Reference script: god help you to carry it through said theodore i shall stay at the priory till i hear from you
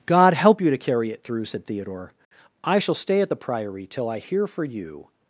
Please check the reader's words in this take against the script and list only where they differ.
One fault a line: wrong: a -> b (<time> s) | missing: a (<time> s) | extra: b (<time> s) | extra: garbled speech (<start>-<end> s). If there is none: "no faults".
wrong: from -> for (4.5 s)